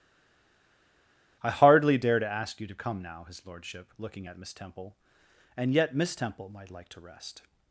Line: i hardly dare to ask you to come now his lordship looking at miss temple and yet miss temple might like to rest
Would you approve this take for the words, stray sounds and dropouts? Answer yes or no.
yes